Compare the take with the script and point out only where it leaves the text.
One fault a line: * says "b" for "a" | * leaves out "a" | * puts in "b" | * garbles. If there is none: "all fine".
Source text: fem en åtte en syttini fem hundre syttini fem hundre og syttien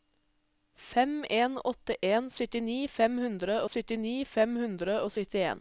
all fine